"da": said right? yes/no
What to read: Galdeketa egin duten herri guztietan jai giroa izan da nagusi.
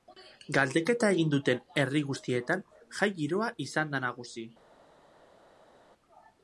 yes